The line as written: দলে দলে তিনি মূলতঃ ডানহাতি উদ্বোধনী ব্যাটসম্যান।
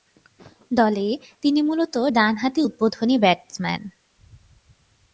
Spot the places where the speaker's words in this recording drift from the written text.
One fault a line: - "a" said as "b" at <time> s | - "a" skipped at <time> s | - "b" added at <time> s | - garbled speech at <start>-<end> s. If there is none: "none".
- "দলে" skipped at 1.1 s